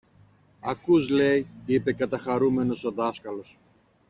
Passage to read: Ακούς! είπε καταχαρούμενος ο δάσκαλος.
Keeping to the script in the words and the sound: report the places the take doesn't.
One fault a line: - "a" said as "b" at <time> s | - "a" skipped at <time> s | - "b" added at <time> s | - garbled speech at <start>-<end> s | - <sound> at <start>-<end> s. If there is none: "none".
- "λέει" added at 1.1 s